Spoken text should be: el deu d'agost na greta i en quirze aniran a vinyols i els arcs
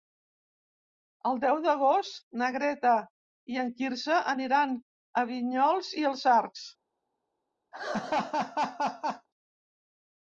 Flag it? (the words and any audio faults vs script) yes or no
yes